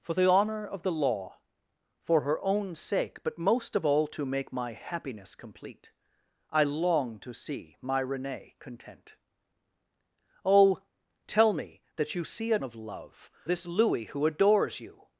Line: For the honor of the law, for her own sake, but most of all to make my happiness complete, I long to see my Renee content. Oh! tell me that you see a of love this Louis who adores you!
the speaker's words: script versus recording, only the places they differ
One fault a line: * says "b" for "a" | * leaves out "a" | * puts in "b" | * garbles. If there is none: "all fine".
all fine